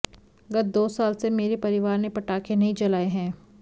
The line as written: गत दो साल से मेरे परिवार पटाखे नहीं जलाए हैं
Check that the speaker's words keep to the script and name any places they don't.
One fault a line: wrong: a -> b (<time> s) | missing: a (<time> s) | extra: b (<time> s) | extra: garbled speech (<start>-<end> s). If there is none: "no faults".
extra: ने (2.0 s)